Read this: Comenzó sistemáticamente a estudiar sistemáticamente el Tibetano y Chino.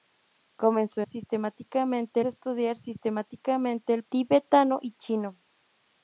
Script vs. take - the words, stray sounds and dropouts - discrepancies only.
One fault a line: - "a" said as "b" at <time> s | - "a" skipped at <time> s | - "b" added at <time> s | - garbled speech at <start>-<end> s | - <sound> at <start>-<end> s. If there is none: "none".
none